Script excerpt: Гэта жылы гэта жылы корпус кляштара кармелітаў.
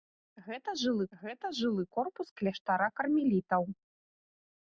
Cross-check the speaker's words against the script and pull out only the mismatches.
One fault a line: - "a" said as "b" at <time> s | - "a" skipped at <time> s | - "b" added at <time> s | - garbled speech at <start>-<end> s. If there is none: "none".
none